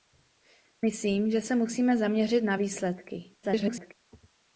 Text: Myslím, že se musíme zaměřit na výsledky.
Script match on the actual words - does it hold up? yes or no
no